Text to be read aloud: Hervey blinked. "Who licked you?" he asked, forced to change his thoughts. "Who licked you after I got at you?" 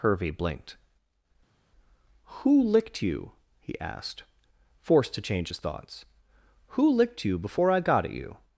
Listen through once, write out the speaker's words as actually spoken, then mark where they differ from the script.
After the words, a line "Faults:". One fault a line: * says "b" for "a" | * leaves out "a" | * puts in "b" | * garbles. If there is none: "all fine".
Hervey blinked. "Who licked you?" he asked, forced to change his thoughts. "Who licked you before I got at you?"
Faults:
* says "before" for "after"